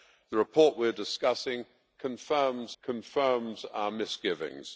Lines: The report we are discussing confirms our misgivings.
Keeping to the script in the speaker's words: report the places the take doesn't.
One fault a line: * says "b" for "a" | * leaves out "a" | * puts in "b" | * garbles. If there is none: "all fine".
* puts in "confirms"